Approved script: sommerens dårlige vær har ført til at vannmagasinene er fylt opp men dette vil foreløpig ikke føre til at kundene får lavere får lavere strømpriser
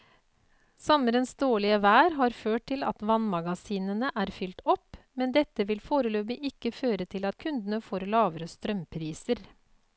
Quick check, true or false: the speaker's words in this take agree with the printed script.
false